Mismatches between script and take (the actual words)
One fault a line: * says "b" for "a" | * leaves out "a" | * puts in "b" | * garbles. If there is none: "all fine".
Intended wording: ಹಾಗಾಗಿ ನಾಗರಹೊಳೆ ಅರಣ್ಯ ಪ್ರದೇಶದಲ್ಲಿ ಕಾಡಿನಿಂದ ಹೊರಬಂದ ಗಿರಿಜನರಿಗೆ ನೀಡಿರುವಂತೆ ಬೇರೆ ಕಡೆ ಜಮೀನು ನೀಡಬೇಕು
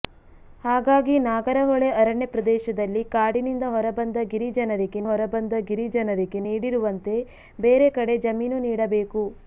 * puts in "ಹೊರಬಂದ ಗಿರಿಜನರಿಗೆ"